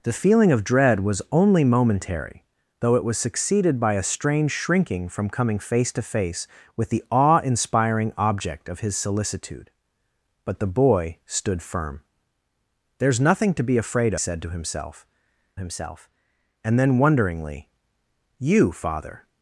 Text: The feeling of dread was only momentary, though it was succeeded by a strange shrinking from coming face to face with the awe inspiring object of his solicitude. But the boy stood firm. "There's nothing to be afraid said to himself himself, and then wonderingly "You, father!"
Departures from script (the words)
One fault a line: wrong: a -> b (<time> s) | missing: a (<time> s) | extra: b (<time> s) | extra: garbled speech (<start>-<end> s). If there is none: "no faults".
no faults